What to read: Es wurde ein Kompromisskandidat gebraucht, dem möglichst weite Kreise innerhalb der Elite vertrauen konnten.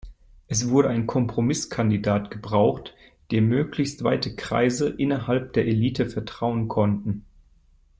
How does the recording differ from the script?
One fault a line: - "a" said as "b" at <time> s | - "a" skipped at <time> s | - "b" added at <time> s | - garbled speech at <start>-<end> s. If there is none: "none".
none